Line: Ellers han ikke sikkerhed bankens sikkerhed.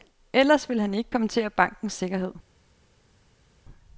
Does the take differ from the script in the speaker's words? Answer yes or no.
yes